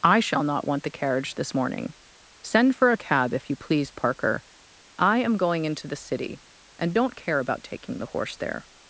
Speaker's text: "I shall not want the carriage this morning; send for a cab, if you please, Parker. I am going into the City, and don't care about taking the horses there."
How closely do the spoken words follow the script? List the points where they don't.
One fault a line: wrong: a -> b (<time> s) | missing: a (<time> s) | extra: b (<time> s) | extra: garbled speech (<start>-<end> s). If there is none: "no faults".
wrong: horses -> horse (8.1 s)